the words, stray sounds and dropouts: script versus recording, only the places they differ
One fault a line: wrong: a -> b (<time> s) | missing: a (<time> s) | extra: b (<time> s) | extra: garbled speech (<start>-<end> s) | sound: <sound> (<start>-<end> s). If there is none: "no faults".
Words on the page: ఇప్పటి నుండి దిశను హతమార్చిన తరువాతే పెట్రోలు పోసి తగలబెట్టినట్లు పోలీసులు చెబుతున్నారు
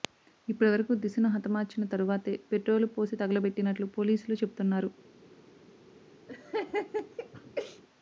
wrong: నుండి -> వరకు (0.7 s)
sound: laugh (6.3-7.8 s)